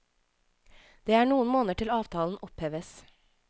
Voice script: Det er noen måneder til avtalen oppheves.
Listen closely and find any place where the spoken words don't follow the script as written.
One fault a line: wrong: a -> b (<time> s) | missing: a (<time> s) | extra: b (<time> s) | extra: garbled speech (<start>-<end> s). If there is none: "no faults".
no faults